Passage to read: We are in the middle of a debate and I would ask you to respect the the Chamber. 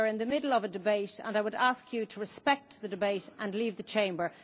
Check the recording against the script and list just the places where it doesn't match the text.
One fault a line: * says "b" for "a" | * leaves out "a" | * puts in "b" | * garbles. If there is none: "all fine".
* puts in "debate and leave"